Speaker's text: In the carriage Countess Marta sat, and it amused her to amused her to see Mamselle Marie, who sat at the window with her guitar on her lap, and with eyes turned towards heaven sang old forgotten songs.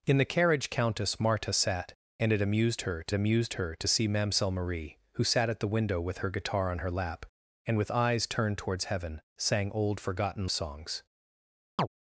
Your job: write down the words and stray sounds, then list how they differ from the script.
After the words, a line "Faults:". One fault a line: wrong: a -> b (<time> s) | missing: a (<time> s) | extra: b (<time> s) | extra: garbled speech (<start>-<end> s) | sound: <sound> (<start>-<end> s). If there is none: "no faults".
In the carriage Countess Marta sat, and it amused her to amused her to see Mamselle Marie, who sat at the window with her guitar on her lap, and with eyes turned towards heaven sang old forgotten songs.
Faults:
sound: chirp (11.8-11.9 s)